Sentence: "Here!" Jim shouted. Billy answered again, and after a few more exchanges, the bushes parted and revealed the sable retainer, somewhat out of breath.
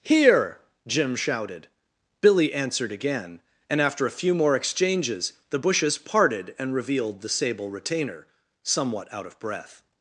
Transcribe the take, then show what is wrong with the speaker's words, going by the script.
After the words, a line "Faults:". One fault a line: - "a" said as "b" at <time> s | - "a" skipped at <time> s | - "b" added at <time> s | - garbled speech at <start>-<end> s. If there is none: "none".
"Here!" Jim shouted. Billy answered again, and after a few more exchanges, the bushes parted and revealed the sable retainer, somewhat out of breath.
Faults:
none